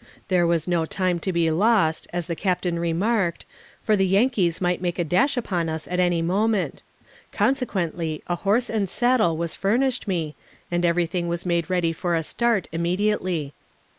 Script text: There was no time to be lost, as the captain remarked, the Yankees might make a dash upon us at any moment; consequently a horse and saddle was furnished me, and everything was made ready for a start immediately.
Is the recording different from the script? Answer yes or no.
yes